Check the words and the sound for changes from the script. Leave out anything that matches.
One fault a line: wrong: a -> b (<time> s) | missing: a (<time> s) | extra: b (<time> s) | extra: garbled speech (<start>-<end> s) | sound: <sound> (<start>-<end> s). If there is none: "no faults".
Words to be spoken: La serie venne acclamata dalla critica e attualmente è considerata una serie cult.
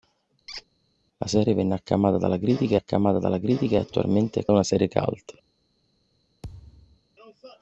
sound: squeak (0.5-0.7 s)
extra: acclamata dalla critica (2.7 s)
missing: considerata (4.5 s)
sound: thud (6.4-7.0 s)